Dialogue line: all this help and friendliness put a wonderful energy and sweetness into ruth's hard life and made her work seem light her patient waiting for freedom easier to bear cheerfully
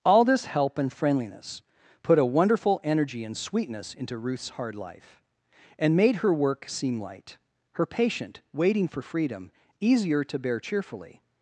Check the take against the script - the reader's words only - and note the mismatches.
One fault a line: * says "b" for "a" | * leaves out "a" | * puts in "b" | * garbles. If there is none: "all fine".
all fine